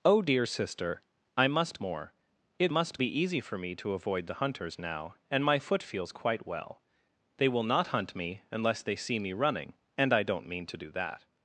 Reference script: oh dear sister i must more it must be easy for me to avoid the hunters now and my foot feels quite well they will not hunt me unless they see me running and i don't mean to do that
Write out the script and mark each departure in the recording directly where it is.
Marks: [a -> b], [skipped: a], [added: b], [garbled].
oh dear sister i must more it must be easy for me to avoid the hunters now and my foot feels quite well they will not hunt me unless they see me running and i don't mean to do that